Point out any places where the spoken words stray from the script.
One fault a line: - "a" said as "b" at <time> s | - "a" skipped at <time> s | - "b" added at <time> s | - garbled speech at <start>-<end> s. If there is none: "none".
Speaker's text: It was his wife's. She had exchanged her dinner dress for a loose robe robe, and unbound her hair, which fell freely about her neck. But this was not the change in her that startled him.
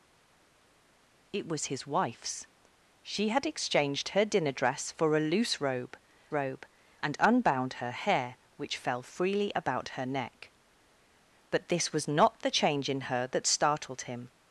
none